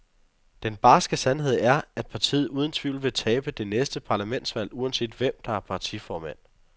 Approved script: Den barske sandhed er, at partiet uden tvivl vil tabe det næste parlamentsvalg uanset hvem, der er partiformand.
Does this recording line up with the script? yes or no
yes